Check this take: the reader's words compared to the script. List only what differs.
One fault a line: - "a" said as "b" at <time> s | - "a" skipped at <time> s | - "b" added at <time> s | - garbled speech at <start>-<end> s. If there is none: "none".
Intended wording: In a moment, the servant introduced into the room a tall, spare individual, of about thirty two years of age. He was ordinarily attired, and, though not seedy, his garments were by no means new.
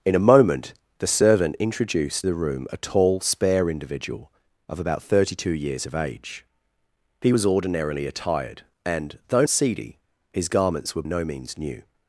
- "into" skipped at 2.3 s
- "not" skipped at 9.4 s
- "by" skipped at 11.0 s